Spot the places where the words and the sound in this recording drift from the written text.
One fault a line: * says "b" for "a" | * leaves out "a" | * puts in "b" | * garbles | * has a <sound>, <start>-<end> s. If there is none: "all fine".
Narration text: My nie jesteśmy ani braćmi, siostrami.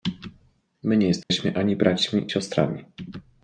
* has a dropout, 1.2-1.3 s